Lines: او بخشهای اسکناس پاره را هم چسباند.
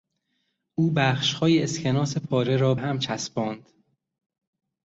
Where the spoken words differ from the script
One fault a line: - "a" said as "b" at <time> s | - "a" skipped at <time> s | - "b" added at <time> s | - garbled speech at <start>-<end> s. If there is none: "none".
none